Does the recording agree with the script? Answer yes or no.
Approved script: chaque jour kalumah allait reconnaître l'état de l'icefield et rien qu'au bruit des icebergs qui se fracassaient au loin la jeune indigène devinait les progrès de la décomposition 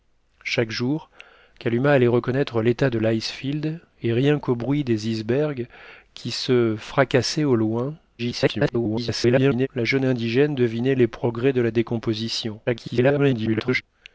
no